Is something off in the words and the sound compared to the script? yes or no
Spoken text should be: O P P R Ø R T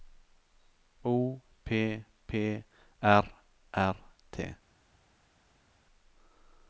yes